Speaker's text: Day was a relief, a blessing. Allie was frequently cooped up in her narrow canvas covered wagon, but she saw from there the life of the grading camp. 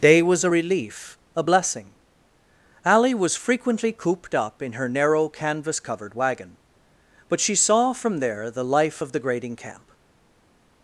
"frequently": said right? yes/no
yes